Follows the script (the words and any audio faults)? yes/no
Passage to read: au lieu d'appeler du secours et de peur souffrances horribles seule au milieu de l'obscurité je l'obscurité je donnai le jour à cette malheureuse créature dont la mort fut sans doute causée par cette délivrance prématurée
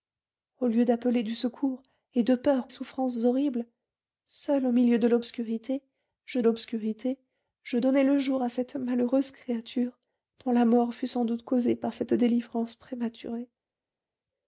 yes